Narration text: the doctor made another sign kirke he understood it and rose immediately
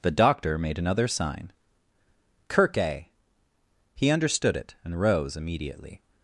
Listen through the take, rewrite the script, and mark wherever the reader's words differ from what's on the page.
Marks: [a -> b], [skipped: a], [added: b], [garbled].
the doctor made another sign kirke he understood it and rose immediately